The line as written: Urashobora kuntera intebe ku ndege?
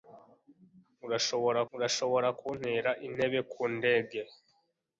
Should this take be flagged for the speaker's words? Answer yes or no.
yes